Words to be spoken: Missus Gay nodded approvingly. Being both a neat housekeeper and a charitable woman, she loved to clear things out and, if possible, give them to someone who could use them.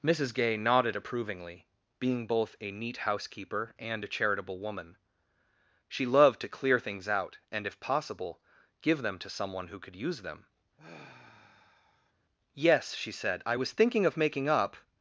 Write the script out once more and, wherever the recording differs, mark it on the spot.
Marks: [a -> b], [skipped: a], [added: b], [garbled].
Missus Gay nodded approvingly. Being both a neat housekeeper and a charitable woman, she loved to clear things out and, if possible, give them to someone who could use them. [added: Yes she said I was thinking of making up]